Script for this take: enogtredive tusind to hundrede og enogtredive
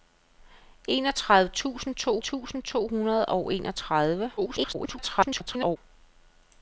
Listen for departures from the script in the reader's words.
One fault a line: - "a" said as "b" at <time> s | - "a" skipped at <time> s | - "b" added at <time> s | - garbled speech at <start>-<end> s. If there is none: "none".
- "tusind to" added at 2.2 s
- garbled speech at 4.4-5.8 s